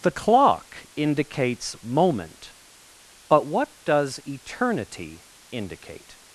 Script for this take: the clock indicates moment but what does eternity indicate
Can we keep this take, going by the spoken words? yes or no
yes